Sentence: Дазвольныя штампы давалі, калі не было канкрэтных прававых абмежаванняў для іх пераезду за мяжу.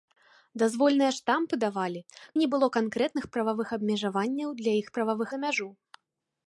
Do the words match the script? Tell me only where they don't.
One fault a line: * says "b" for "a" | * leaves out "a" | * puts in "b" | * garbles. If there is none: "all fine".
* leaves out "калі"
* says "прававых" for "пераезду"